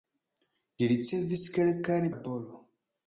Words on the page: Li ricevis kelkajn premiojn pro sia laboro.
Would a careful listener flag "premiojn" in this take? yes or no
yes